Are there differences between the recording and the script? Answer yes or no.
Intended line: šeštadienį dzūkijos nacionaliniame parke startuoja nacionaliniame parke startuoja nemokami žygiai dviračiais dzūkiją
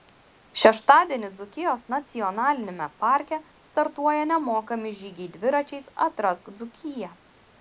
yes